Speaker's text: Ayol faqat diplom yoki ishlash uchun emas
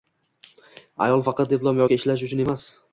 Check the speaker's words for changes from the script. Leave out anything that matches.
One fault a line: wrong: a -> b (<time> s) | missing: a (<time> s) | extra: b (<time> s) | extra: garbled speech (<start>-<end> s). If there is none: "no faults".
no faults